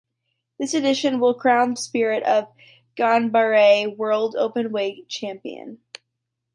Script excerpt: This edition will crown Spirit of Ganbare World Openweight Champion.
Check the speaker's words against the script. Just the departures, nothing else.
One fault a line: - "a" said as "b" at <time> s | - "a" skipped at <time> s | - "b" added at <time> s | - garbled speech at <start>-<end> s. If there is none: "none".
none